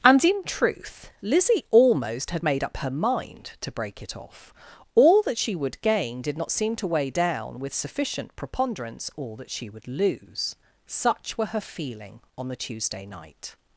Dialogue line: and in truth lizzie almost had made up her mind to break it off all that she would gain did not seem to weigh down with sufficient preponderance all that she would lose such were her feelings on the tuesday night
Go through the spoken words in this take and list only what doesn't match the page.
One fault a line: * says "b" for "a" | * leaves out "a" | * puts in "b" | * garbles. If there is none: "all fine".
* says "feeling" for "feelings"